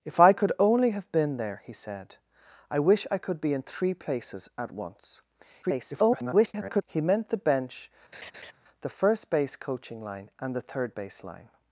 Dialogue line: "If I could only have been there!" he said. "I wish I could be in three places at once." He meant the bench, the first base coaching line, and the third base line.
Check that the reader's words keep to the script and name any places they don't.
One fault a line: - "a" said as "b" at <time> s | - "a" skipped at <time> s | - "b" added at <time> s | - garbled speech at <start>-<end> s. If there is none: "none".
- garbled speech at 5.6-6.8 s